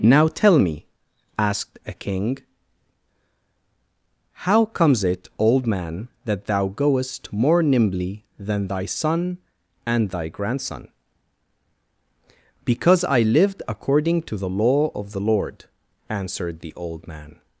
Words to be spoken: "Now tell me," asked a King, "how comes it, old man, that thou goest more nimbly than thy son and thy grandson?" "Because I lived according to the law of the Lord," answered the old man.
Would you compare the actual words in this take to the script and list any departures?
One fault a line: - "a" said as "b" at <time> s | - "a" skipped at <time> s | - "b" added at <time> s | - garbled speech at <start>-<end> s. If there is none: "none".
none